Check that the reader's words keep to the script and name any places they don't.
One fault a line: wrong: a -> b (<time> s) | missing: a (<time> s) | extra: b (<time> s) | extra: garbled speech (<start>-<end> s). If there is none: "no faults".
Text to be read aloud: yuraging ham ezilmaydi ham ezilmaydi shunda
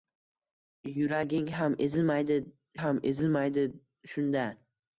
no faults